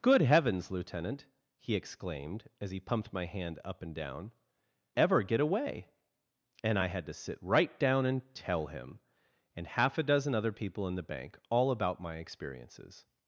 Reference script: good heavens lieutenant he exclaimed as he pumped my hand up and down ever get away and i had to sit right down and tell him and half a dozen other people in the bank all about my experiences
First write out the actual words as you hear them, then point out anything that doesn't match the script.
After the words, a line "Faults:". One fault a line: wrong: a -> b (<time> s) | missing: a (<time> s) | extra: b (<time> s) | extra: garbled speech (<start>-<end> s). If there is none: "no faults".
good heavens lieutenant he exclaimed as he pumped my hand up and down ever get away and i had to sit right down and tell him and half a dozen other people in the bank all about my experiences
Faults:
no faults